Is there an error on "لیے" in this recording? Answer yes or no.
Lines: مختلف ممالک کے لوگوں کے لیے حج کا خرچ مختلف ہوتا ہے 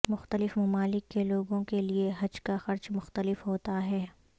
no